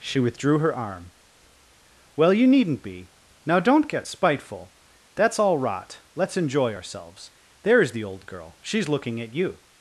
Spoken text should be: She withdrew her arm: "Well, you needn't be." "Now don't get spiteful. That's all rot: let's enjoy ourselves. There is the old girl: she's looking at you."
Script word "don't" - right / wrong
right